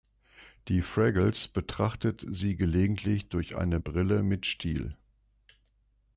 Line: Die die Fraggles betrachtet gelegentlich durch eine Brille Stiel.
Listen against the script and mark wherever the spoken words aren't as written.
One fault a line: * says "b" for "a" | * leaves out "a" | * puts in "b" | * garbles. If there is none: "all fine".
* leaves out "die"
* puts in "sie"
* puts in "mit"